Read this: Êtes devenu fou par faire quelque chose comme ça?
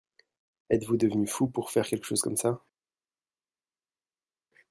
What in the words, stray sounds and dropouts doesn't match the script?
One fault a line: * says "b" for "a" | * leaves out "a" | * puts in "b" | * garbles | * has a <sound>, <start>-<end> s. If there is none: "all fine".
* puts in "vous"
* says "pour" for "par"